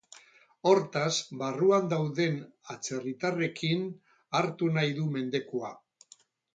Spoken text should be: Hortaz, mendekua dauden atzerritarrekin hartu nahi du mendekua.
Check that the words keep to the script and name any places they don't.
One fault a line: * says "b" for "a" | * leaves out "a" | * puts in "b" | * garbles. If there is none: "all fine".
* says "barruan" for "mendekua"